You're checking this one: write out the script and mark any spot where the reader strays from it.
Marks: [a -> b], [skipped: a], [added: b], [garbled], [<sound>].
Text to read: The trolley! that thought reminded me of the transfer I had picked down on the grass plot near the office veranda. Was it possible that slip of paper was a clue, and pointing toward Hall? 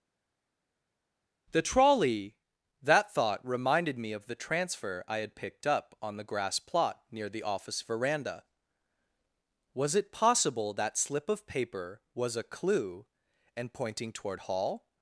The trolley! that thought reminded me of the transfer I had picked [down -> up] on the grass plot near the office veranda. Was it possible that slip of paper was a clue, and pointing toward Hall?